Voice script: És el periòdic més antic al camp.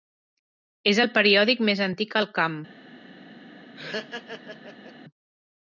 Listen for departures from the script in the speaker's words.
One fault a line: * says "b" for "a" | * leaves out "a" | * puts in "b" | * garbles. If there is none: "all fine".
all fine